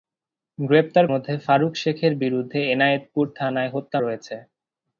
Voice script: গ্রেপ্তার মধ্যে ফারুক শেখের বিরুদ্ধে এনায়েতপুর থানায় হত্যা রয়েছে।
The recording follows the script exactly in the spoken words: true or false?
true